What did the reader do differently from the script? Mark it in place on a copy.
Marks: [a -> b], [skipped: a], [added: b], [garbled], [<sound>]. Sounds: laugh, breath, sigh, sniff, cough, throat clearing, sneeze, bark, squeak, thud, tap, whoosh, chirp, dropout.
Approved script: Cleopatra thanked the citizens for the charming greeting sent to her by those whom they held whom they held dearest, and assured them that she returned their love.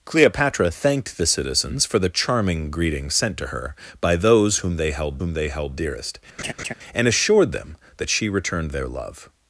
Cleopatra thanked the citizens for the charming greeting sent to her by those whom they held whom they held dearest, [laugh] and assured them that she returned their love.